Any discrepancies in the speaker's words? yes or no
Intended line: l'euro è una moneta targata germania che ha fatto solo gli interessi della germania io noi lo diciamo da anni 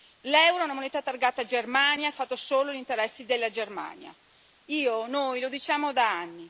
yes